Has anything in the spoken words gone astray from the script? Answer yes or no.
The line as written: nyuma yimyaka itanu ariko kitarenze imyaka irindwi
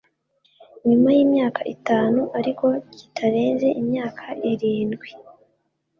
no